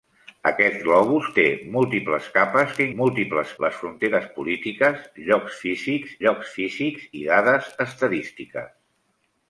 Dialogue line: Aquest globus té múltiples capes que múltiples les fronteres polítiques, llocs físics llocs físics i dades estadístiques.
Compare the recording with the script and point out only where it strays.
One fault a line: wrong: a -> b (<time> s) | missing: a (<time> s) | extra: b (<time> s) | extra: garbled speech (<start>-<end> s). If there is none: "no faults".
no faults